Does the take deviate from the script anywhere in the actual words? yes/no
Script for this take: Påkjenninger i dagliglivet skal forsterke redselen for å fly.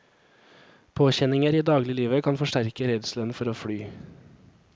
yes